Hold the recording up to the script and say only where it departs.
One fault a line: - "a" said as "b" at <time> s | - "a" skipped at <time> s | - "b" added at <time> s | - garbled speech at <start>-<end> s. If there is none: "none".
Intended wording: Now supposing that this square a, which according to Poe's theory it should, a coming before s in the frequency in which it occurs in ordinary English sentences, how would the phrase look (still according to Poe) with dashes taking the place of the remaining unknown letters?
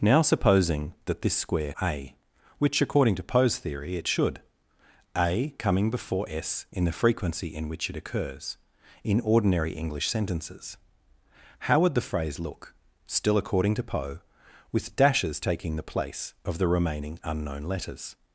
none